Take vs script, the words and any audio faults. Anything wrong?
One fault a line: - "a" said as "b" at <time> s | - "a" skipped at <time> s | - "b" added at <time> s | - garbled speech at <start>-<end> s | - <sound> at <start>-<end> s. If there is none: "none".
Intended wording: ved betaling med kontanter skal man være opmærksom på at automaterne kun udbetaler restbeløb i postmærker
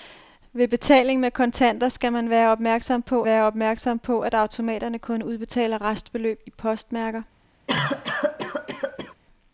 - "være opmærksom på" added at 3.2 s
- cough at 7.7-9.1 s